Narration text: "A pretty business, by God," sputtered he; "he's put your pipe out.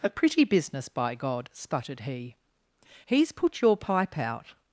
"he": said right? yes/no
yes